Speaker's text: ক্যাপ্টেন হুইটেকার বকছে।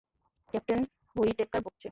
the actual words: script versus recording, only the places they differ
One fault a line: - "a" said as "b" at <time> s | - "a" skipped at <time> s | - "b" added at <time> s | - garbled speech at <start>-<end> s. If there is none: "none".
none